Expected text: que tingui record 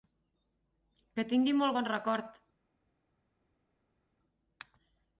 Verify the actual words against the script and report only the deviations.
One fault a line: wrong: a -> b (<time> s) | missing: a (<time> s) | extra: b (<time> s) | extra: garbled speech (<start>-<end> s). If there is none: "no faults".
extra: molt bon (1.6 s)